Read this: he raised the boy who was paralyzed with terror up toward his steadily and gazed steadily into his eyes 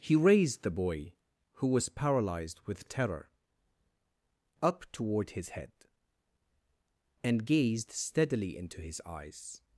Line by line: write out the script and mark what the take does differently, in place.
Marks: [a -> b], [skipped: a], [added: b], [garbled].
he raised the boy who was paralyzed with terror up toward his [steadily -> head] and gazed steadily into his eyes